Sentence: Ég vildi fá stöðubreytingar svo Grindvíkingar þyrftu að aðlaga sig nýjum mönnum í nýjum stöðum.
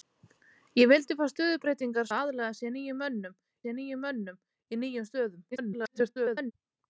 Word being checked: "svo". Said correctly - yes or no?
no